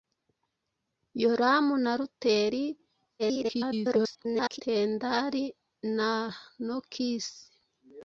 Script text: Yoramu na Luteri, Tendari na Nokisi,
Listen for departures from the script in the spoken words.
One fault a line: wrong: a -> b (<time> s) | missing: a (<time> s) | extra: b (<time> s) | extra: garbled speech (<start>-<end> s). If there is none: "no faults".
extra: garbled speech (3.2-4.6 s)